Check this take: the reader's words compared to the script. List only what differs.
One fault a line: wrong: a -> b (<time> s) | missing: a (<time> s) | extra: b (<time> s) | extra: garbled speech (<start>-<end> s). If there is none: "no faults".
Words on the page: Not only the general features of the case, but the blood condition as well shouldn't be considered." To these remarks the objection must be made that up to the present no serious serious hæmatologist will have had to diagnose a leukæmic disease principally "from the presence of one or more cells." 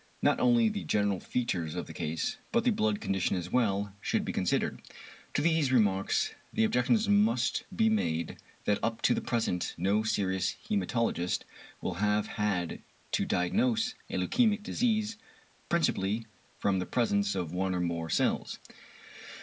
wrong: shouldn't -> should (4.0 s)
missing: serious (10.6 s)